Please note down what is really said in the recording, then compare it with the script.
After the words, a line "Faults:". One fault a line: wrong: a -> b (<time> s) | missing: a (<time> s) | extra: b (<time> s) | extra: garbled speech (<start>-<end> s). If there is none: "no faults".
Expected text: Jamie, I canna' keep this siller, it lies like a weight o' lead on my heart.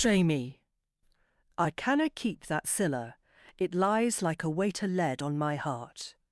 Jamie, I canna' keep that siller, it lies like a weight o' lead on my heart.
Faults:
wrong: this -> that (2.5 s)